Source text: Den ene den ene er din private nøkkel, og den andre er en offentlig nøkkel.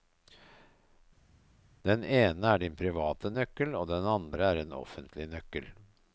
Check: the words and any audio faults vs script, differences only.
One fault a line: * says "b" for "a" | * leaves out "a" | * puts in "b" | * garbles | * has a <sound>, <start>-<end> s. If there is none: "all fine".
* leaves out "den ene"